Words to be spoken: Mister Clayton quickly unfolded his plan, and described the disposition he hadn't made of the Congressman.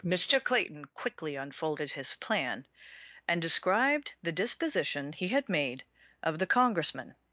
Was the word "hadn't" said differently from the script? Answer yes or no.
yes